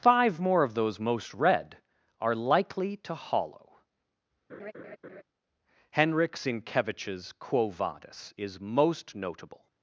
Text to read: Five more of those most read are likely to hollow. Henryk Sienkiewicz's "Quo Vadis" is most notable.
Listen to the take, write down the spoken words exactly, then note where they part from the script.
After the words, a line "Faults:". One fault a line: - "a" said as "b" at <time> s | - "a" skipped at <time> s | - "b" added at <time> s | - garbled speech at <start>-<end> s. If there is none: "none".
Five more of those most read are likely to hollow. Henryk Sienkiewicz's "Quo Vadis" is most notable.
Faults:
none